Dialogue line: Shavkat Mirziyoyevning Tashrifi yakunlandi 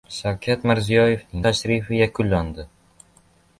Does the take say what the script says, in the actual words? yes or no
yes